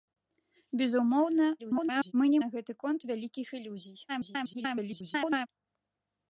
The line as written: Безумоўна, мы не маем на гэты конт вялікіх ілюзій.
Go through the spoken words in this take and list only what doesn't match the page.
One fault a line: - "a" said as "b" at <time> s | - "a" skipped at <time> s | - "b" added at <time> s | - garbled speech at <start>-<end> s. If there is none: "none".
- garbled speech at 1.6-2.1 s
- "маем" skipped at 2.4 s
- garbled speech at 4.1-5.5 s